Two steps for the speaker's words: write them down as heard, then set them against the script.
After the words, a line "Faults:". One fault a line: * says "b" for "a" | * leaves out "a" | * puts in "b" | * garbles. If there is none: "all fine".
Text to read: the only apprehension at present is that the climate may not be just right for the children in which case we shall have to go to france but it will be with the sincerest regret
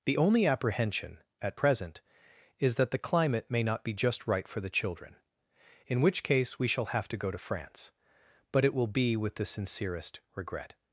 the only apprehension at present is that the climate may not be just right for the children in which case we shall have to go to france but it will be with the sincerest regret
Faults:
all fine